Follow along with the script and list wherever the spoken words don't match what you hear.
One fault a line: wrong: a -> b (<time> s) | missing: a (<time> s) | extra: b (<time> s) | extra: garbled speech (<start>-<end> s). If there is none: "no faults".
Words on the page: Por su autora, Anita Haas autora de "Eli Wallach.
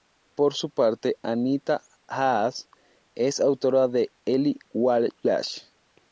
wrong: autora -> parte (0.7 s)
extra: es (3.1 s)